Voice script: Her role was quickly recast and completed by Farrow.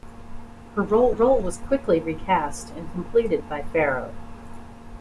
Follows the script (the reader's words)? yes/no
no